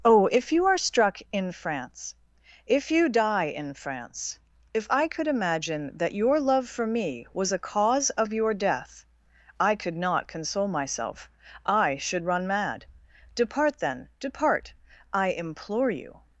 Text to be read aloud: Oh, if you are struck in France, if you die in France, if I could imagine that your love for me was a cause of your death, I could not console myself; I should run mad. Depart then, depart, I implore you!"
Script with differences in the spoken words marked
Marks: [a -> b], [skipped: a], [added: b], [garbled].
Oh, if you are struck in France, if you die in France, if I could imagine that your love for me was a cause of your death, I could not console myself; I should run mad. Depart then, depart, I implore you!"